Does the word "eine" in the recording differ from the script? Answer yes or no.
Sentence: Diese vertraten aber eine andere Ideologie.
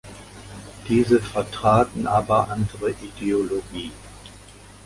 yes